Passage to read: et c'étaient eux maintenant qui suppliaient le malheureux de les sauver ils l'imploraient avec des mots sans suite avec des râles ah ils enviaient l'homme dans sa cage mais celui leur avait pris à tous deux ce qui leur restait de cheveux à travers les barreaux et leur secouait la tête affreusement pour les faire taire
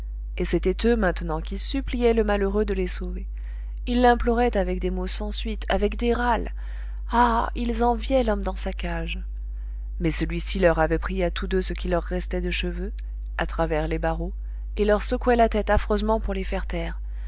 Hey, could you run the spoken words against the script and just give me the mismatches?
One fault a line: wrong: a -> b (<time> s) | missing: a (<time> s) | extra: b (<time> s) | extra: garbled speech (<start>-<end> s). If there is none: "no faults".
extra: ci (10.4 s)